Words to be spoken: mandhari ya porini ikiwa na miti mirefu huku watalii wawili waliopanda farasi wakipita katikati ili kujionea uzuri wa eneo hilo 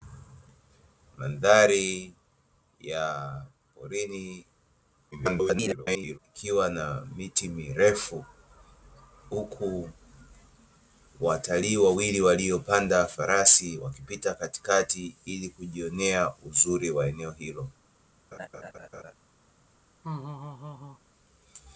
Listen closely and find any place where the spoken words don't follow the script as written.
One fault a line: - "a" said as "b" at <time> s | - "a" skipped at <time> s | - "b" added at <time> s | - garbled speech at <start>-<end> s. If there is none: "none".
- garbled speech at 5.1-6.2 s